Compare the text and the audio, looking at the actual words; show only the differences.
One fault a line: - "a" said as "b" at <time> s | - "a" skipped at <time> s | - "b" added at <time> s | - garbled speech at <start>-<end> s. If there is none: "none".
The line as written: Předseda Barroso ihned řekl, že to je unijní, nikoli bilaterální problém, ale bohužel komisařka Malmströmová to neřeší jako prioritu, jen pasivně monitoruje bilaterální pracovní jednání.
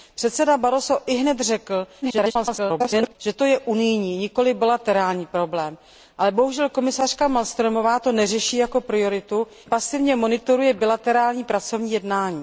- garbled speech at 2.0-3.2 s
- "jen" skipped at 9.5 s